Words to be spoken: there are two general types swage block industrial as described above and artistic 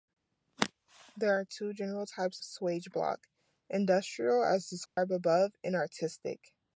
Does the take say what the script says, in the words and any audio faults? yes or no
no